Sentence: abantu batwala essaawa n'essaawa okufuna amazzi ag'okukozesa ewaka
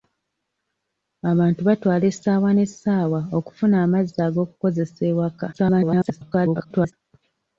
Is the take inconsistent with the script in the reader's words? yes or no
yes